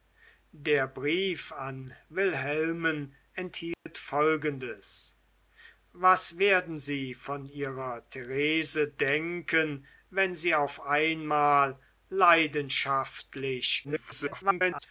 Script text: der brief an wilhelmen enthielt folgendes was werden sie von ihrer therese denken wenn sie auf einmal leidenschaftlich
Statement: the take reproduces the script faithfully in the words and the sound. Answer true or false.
false